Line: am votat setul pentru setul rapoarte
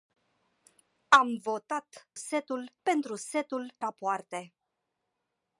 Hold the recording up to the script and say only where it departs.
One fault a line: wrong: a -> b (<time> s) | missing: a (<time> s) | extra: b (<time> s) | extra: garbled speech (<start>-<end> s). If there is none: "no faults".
no faults